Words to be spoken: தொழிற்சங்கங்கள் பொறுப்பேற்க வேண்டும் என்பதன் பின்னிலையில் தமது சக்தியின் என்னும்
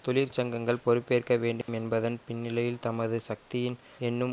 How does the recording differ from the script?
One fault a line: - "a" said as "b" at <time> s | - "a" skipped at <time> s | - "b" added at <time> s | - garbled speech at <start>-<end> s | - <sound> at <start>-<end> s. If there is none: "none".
- dropout at 1.6-1.7 s